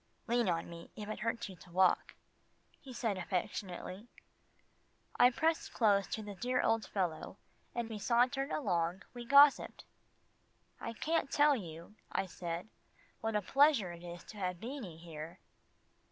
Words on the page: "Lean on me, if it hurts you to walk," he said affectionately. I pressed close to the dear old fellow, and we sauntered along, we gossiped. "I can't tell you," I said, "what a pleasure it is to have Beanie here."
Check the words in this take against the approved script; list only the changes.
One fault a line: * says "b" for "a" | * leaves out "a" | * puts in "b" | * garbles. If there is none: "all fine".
all fine